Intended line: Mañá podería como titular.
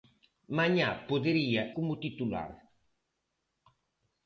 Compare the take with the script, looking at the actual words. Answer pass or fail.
pass